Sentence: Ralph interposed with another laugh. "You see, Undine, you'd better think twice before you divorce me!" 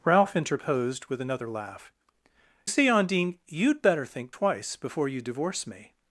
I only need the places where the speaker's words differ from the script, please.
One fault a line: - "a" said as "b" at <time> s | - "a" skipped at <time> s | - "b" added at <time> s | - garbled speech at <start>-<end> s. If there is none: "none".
- "You" skipped at 1.9 s